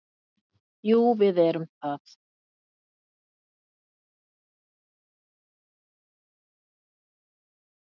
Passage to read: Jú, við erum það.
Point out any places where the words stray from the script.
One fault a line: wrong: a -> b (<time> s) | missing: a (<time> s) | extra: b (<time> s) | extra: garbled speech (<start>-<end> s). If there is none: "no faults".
no faults